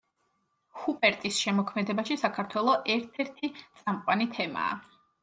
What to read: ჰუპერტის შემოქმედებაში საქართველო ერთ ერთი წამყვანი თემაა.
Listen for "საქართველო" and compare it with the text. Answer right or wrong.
right